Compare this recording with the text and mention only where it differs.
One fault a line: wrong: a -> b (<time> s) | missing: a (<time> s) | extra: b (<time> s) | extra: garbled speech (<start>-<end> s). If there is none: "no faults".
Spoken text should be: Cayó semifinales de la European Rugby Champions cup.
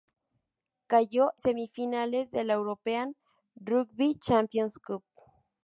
no faults